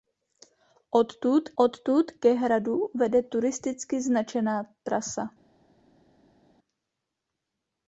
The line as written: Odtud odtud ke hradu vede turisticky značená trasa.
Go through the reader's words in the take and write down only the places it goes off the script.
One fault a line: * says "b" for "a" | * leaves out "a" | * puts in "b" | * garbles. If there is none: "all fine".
all fine